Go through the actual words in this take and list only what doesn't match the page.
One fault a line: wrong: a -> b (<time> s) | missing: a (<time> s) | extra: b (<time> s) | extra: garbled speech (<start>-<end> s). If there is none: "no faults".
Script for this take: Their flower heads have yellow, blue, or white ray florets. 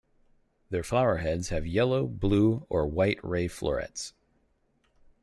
no faults